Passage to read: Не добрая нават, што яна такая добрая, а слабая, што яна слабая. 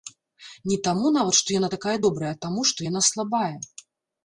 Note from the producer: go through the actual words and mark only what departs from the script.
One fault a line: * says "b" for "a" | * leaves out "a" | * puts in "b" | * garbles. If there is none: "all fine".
* says "таму" for "добрая"
* says "таму" for "слабая"